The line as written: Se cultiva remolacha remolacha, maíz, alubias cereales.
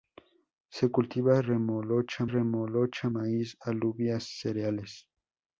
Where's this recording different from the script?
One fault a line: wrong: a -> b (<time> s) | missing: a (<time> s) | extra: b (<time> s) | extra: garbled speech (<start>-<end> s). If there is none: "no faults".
no faults